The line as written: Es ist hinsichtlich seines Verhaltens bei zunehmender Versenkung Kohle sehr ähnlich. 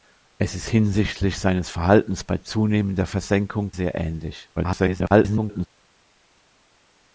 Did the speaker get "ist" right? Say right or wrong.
right